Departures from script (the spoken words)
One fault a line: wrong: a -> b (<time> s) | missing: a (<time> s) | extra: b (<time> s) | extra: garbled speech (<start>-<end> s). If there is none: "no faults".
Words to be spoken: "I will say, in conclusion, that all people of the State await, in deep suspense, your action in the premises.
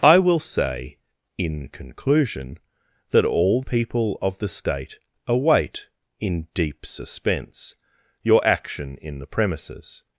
no faults